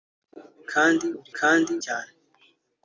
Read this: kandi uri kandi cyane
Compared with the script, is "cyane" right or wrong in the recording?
right